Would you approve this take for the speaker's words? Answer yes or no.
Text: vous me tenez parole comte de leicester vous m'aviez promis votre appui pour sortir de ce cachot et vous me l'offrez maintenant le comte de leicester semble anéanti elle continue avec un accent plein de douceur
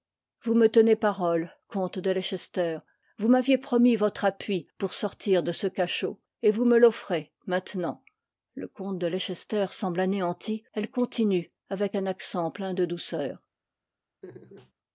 yes